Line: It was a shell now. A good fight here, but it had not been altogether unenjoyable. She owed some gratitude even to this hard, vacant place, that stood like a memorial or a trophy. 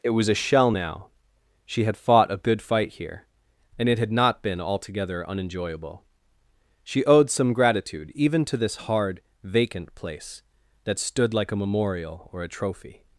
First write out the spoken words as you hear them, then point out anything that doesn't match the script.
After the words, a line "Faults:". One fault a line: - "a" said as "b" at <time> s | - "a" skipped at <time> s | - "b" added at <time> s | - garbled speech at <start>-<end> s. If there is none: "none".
It was a shell now. She had fought a good fight here, and it had not been altogether unenjoyable. She owed some gratitude even to this hard, vacant place, that stood like a memorial or a trophy.
Faults:
- "She had fought" added at 1.7 s
- "but" said as "and" at 3.8 s